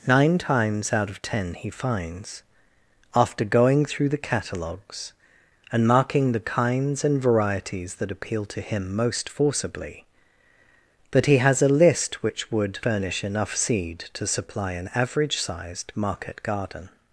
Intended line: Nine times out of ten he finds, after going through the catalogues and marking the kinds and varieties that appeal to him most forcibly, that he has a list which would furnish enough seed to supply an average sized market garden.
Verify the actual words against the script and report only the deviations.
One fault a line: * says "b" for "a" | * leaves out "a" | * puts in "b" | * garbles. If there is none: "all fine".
all fine